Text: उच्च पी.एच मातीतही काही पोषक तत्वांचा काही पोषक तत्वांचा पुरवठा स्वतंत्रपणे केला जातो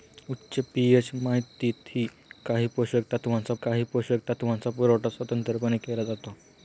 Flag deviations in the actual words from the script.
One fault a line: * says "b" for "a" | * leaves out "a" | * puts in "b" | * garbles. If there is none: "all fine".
all fine